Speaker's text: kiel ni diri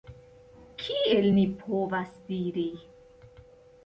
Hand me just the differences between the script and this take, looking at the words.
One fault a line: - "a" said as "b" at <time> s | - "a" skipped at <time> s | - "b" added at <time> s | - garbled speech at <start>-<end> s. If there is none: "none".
- "povas" added at 1.6 s